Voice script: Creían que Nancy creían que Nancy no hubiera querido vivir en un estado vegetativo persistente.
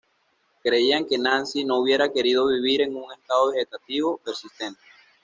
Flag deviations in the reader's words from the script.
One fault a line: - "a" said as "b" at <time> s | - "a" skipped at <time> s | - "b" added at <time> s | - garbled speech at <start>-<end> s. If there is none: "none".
- "creían que Nancy" skipped at 1.6 s